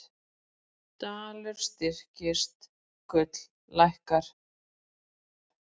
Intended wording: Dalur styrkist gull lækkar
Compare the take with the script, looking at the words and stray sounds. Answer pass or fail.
pass